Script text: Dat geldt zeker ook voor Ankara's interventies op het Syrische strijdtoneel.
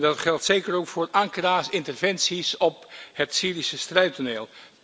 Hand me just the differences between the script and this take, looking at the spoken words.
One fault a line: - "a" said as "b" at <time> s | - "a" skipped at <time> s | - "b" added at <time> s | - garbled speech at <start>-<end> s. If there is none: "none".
none